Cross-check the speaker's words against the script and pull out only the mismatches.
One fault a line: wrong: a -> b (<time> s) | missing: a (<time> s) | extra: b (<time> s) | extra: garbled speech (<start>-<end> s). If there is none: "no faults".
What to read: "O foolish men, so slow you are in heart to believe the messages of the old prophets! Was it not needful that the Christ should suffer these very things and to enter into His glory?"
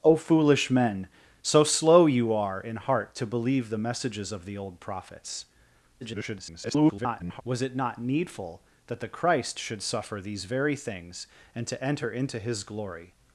extra: garbled speech (6.0-7.4 s)